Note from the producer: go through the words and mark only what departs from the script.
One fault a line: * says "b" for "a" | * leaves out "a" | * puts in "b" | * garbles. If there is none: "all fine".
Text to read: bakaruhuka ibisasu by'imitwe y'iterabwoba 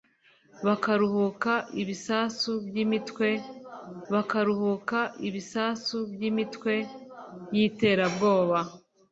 * puts in "bakaruhuka ibisasu by'imitwe"